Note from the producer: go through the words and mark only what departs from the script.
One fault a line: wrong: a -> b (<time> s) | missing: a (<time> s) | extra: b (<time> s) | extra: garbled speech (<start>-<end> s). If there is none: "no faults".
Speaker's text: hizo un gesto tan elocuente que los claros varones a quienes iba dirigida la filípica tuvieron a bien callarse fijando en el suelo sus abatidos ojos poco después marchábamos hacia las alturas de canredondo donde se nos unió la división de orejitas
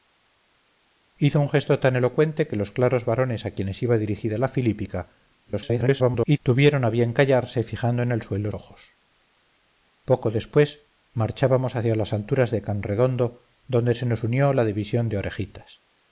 extra: garbled speech (5.5-6.4 s)
missing: sus abatidos (8.5 s)